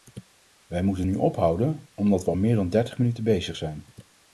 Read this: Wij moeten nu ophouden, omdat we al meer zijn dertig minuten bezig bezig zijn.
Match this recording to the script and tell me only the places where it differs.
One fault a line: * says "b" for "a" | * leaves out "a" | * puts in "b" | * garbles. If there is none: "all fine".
* says "dan" for "zijn"
* leaves out "bezig"